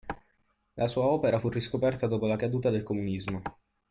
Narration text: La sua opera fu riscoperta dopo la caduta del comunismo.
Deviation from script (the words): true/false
false